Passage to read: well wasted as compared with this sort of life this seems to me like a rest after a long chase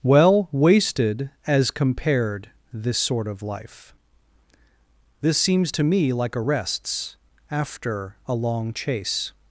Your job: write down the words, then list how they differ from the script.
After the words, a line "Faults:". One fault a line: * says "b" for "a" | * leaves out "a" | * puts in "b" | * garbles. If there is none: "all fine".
well wasted as compared this sort of life this seems to me like a rests after a long chase
Faults:
* leaves out "with"
* says "rests" for "rest"